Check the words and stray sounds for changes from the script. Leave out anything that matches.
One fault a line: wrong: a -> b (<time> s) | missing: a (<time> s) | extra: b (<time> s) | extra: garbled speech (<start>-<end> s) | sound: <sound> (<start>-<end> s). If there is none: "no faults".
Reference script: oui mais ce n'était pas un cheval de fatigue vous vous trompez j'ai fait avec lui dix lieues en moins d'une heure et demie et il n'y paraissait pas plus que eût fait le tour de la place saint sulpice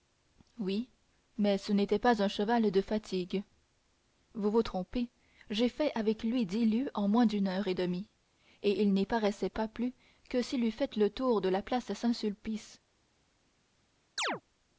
extra: s'il (10.4 s)
sound: chirp (14.2-14.4 s)